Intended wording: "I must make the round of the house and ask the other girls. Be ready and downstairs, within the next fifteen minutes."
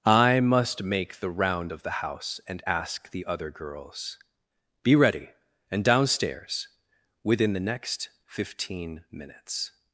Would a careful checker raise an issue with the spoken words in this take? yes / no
no